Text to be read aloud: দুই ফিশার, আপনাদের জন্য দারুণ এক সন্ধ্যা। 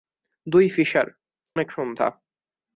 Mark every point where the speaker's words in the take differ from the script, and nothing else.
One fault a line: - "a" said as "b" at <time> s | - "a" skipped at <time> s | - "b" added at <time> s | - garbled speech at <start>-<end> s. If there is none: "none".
- "আপনাদের জন্য দারুণ" skipped at 1.1 s